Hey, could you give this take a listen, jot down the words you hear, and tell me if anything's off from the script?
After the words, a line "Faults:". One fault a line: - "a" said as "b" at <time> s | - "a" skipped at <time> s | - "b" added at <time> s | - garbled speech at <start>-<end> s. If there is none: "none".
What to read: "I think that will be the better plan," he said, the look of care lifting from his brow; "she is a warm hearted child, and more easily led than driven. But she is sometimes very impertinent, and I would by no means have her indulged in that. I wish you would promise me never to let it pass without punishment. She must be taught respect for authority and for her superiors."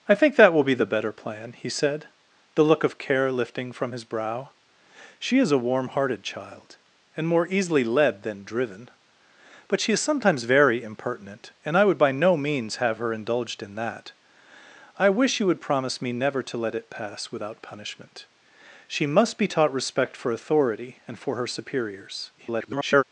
"I think that will be the better plan," he said, the look of care lifting from his brow; "she is a warm hearted child, and more easily led than driven. But she is sometimes very impertinent, and I would by no means have her indulged in that. I wish you would promise me never to let it pass without punishment. She must be taught respect for authority and for her superiors." [garbled]
Faults:
- garbled speech at 22.4-23.0 s